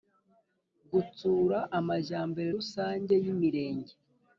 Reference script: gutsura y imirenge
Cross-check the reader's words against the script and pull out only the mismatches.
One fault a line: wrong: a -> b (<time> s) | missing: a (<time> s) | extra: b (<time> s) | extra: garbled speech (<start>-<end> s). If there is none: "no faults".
extra: amajyambere rusange (1.8 s)